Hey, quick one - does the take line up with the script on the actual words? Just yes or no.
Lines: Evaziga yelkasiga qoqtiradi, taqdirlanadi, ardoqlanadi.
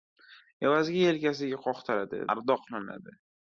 no